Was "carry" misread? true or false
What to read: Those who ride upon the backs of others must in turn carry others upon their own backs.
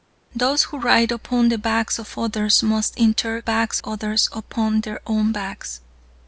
true